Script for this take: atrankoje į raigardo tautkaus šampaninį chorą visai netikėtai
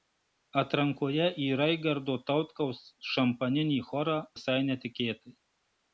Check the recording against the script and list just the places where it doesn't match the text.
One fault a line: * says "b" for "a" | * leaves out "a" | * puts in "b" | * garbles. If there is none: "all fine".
all fine